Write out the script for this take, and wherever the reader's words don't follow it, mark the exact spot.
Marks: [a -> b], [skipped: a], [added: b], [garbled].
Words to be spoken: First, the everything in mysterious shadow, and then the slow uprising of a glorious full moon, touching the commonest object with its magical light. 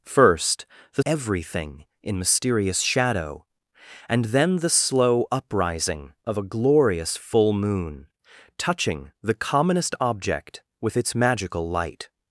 First, the everything in mysterious shadow, and then the slow uprising of a glorious full moon, touching the commonest object with its magical light.